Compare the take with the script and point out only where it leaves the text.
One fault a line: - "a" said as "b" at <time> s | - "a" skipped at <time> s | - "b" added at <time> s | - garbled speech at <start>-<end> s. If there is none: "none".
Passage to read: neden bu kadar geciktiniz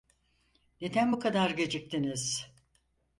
none